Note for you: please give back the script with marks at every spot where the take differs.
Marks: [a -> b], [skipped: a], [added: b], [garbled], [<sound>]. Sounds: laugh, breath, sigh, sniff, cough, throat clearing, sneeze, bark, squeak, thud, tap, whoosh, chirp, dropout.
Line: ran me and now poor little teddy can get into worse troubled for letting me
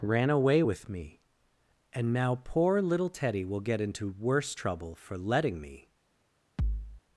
ran [added: away with] me and now poor little teddy [can -> will] get into worse [troubled -> trouble] for letting me [thud]